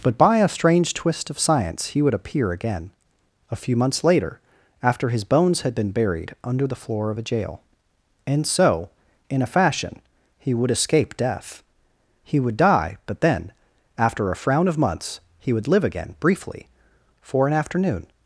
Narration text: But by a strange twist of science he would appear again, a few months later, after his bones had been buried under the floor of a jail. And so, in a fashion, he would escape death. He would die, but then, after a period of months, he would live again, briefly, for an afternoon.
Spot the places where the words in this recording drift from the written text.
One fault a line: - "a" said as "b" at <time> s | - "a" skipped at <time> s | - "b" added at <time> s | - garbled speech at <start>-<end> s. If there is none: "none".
- "period" said as "frown" at 14.4 s